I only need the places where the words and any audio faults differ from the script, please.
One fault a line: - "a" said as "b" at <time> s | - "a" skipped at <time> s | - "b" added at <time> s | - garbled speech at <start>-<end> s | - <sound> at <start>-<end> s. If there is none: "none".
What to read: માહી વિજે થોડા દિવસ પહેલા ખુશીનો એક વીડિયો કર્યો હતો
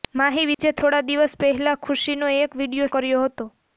- dropout at 0.5-0.6 s